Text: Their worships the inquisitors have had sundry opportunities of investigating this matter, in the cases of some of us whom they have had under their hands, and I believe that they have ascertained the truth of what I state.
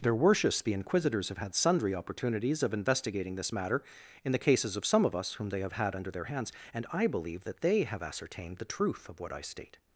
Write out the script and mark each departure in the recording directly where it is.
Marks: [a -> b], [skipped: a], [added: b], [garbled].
Their worships the inquisitors have had sundry opportunities of investigating this matter, in the cases of some of us whom they have had under their hands, and I believe that they have ascertained the truth of what I state.